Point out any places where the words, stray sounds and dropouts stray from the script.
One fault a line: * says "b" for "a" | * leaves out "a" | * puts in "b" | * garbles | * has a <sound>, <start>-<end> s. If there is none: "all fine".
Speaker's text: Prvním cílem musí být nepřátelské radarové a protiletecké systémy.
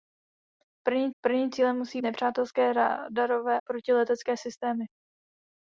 * puts in "prvním"
* leaves out "být"
* leaves out "a"